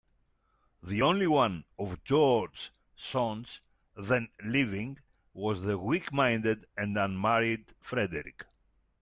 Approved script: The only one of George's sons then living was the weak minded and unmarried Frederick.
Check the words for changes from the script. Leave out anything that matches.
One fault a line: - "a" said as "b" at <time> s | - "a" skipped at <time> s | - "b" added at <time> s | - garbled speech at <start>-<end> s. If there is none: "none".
none